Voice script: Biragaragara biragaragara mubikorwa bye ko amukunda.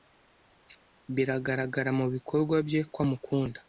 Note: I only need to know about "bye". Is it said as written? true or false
true